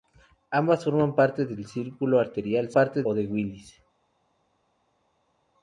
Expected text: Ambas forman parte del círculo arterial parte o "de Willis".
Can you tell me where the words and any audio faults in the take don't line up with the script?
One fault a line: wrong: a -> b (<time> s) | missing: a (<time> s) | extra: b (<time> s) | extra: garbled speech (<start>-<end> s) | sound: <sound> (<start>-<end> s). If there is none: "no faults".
no faults